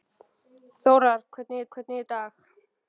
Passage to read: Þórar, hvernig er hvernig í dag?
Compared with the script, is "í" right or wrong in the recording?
right